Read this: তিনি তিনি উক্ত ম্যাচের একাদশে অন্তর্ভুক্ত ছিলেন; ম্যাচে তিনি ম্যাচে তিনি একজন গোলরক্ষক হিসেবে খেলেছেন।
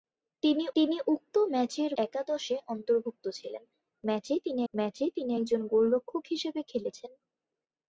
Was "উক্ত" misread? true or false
false